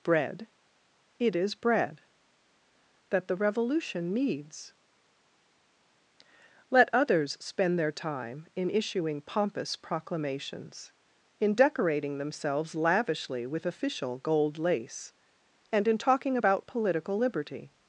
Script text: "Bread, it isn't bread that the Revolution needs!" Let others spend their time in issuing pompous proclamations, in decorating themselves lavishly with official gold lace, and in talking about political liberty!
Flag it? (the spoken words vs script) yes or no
yes